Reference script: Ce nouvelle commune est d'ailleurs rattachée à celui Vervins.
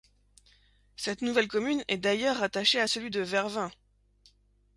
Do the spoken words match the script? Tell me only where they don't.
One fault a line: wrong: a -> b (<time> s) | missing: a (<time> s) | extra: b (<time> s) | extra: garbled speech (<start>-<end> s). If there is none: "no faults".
wrong: Ce -> Cette (0.9 s)
extra: de (3.1 s)